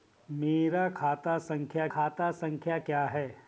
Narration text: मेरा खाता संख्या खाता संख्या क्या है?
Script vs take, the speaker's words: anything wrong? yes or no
no